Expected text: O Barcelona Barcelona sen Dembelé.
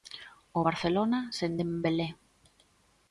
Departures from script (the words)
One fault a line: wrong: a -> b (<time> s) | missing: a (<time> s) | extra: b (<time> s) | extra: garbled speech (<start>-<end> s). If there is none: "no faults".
missing: Barcelona (1.2 s)